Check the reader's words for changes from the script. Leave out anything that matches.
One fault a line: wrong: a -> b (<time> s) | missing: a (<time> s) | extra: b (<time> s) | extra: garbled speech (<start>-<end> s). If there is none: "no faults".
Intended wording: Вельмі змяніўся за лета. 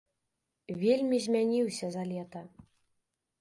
no faults